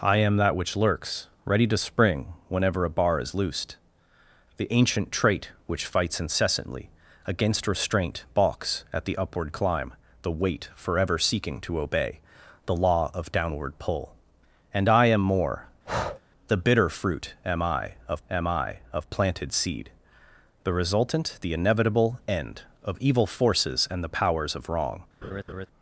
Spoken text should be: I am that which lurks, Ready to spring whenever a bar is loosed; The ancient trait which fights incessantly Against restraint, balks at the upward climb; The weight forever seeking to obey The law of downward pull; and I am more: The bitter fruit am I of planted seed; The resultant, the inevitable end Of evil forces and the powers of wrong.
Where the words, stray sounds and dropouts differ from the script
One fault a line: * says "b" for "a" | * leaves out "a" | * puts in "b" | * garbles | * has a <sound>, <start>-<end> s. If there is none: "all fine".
* has a breath, 15.8-16.2 s
* puts in "am I of"
* has a laugh, 25.2-25.7 s